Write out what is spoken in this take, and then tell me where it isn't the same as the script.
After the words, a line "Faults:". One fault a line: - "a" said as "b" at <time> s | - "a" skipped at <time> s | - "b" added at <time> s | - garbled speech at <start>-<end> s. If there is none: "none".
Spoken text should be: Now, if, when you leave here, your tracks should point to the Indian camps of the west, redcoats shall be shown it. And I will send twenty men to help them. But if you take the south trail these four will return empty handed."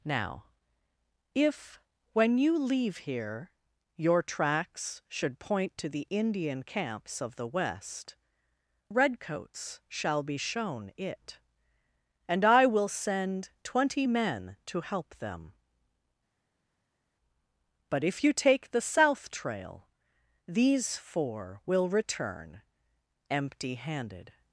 Now, if, when you leave here, your tracks should point to the Indian camps of the west, redcoats shall be shown it. And I will send twenty men to help them. But if you take the south trail these four will return empty handed."
Faults:
none